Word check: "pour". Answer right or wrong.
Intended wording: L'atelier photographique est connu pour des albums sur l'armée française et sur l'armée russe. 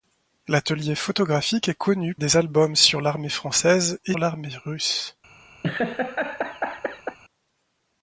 wrong